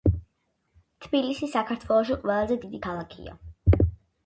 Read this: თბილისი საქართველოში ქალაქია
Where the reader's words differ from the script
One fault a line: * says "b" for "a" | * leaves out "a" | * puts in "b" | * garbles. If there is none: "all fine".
* puts in "ყველაზე დიდი"